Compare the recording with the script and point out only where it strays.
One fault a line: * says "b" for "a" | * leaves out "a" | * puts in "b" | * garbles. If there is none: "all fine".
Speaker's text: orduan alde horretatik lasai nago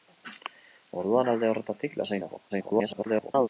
* garbles